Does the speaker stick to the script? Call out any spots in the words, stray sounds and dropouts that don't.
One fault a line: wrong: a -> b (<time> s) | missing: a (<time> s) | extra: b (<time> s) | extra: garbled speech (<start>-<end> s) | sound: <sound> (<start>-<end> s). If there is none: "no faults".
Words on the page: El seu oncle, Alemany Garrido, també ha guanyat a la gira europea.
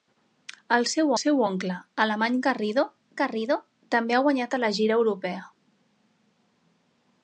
extra: seu (1.2 s)
extra: Garrido (3.2 s)